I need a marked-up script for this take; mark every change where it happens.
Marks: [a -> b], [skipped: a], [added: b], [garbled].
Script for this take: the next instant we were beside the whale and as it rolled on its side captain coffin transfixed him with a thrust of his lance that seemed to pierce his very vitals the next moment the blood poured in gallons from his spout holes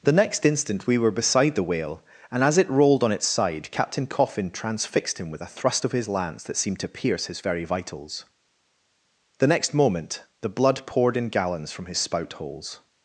the next instant we were beside the whale and as it rolled on its side captain coffin transfixed him with a thrust of his lance that seemed to pierce his very vitals the next moment the blood poured in gallons from his spout holes